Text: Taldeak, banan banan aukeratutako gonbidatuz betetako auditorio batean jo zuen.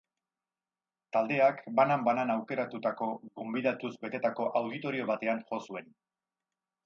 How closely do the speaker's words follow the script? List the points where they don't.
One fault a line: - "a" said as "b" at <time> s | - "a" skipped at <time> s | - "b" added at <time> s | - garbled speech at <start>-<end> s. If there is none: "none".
none